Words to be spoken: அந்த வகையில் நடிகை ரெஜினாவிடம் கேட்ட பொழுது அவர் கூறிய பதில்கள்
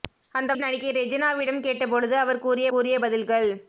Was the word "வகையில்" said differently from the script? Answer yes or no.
yes